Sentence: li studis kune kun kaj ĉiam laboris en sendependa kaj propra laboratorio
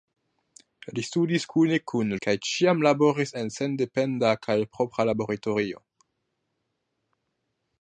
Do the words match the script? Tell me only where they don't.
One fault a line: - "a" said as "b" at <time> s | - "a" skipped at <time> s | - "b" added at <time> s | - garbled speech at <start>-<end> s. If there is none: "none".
none